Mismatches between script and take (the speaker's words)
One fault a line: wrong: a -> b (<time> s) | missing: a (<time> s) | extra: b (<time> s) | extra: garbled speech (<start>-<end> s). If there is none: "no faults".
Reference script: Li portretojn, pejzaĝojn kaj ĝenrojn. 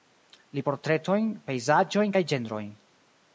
no faults